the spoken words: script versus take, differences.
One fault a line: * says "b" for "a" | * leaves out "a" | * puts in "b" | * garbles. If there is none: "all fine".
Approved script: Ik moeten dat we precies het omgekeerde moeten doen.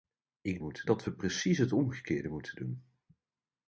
all fine